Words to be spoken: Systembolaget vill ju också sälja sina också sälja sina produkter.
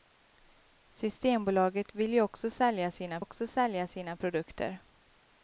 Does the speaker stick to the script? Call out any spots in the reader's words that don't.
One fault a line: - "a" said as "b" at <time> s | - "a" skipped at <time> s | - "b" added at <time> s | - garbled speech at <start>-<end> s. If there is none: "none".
none